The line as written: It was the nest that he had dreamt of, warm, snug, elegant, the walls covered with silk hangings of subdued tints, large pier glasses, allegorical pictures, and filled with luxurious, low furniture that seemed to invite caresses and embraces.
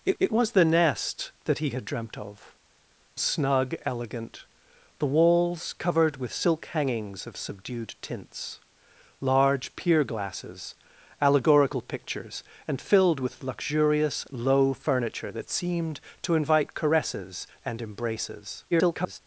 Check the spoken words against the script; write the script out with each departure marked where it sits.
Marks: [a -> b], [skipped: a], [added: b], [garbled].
It [added: it] was the nest that he had dreamt of, [skipped: warm,] snug, elegant, the walls covered with silk hangings of subdued tints, large pier glasses, allegorical pictures, and filled with luxurious, low furniture that seemed to invite caresses and embraces. [garbled]